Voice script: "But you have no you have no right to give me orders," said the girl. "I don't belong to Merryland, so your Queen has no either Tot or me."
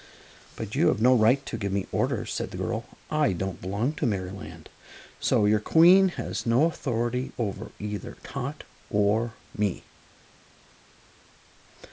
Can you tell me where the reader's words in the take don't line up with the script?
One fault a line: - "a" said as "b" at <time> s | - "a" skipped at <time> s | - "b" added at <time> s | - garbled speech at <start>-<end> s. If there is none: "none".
- "you have no" skipped at 1.1 s
- "authority over" added at 6.7 s